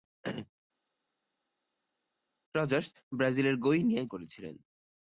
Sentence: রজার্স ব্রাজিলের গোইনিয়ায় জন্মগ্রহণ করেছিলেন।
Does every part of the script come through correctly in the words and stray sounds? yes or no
no